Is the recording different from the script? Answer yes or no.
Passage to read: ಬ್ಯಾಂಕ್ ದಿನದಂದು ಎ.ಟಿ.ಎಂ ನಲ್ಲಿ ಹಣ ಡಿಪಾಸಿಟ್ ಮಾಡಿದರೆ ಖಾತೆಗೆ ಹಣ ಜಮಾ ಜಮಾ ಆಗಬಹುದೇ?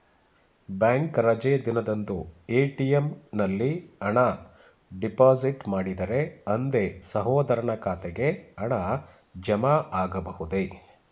yes